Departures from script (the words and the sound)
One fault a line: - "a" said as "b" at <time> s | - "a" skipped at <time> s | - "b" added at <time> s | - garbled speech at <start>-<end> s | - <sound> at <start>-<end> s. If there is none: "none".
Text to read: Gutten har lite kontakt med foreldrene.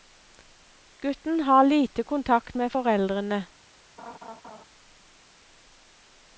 - laugh at 4.0-4.6 s